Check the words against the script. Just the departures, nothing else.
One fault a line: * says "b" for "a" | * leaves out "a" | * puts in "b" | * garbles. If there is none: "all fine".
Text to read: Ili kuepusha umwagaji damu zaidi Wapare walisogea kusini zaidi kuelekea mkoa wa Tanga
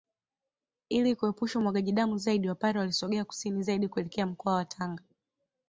all fine